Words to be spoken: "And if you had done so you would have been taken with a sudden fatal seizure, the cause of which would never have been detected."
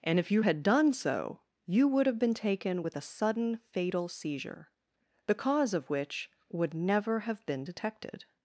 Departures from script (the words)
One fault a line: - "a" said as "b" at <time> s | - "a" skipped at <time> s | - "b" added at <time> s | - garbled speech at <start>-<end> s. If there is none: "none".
none